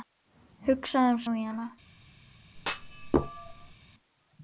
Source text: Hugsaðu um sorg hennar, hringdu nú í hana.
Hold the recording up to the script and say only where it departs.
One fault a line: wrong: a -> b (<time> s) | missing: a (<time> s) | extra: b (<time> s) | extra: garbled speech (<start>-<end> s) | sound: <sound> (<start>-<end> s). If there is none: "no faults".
missing: sorg hennar hringdu (1.2 s)
sound: thud (2.5-3.8 s)